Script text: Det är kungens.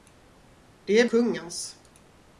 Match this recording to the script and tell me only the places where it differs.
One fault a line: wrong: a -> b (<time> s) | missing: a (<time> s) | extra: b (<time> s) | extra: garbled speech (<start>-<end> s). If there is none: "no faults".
no faults